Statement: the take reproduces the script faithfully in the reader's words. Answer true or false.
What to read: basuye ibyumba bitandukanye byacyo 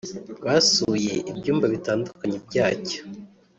true